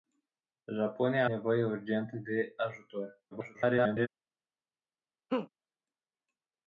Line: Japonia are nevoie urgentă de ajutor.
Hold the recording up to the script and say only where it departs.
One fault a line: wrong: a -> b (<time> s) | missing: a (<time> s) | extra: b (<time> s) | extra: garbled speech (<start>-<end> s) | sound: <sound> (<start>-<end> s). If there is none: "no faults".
missing: are (1.3 s)
extra: garbled speech (3.3-4.1 s)
sound: laugh (5.3-5.5 s)